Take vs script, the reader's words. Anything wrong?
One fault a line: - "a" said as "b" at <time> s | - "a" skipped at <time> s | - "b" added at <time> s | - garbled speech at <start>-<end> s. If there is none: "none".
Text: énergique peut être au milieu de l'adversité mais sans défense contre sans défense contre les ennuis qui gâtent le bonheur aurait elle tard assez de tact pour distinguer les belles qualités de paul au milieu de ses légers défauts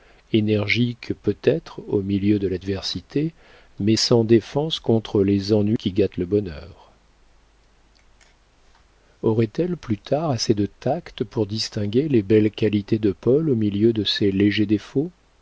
- "sans défense contre" skipped at 5.2 s
- "plus" added at 9.8 s